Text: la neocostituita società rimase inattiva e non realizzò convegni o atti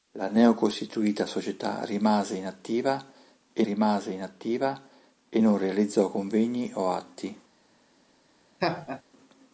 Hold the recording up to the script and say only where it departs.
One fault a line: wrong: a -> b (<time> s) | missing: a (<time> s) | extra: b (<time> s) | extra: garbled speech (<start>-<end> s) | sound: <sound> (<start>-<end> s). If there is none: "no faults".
extra: rimase inattiva e (3.6 s)
sound: laugh (8.6-9.0 s)